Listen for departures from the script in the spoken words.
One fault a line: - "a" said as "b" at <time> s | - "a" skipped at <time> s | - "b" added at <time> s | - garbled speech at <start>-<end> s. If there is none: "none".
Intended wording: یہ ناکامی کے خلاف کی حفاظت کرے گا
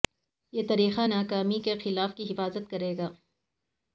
- "طریقہ" added at 0.7 s